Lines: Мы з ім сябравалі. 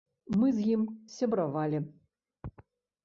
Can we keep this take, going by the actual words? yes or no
yes